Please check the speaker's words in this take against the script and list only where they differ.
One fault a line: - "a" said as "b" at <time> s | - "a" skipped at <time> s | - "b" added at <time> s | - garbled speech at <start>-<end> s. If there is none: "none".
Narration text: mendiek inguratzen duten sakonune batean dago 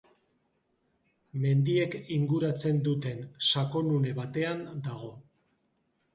none